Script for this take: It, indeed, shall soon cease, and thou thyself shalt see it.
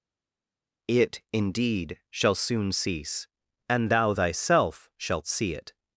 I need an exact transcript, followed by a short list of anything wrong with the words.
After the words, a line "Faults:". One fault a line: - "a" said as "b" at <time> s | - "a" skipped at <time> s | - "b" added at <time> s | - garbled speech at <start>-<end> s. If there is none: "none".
It, indeed, shall soon cease, and thou thyself shalt see it.
Faults:
none